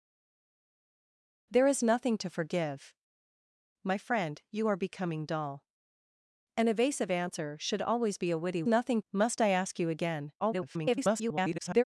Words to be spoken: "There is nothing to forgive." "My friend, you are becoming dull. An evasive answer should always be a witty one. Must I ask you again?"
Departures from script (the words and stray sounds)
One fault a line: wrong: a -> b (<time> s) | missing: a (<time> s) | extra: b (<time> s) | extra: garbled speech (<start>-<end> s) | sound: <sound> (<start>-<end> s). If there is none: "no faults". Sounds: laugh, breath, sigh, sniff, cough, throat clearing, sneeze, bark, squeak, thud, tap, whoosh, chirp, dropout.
wrong: one -> nothing (8.6 s)
extra: garbled speech (10.4-11.8 s)